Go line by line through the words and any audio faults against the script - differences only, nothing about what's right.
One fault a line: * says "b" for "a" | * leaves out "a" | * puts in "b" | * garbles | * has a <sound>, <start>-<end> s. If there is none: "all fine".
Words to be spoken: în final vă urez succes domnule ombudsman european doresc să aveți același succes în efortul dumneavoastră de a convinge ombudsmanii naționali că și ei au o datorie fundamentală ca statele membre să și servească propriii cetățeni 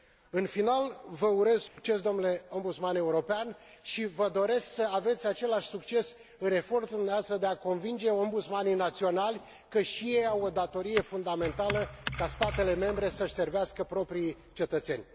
* has a dropout, 1.7-1.8 s
* puts in "și vă"